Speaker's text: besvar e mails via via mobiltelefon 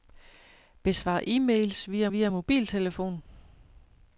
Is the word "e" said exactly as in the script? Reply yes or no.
yes